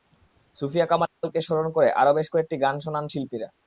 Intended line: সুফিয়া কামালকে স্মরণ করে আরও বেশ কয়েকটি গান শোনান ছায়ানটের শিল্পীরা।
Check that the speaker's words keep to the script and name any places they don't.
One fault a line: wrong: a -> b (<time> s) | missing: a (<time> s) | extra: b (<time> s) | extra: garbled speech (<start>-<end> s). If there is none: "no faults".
missing: ছায়ানটের (3.1 s)